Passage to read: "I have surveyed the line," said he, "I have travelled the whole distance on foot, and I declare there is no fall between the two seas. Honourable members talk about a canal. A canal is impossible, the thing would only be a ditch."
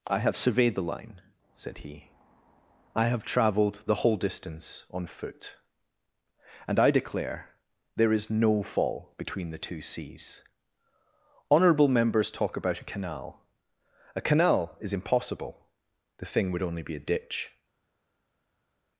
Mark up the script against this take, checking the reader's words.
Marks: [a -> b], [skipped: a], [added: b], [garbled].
"I have surveyed the line," said he, "I have travelled the whole distance on foot, and I declare there is no fall between the two seas. Honourable members talk about a canal. A canal is impossible, the thing would only be a ditch."